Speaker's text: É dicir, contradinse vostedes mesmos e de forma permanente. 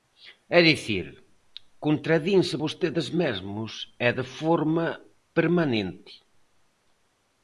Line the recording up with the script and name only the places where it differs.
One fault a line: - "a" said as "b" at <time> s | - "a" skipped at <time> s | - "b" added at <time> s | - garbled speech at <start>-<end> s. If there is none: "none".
none